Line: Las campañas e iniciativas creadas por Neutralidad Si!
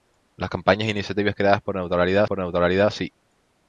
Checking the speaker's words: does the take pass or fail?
fail